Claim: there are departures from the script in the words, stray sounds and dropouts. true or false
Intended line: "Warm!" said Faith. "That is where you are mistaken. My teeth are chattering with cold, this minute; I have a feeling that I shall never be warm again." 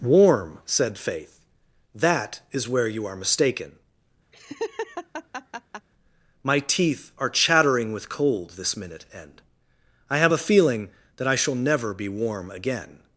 true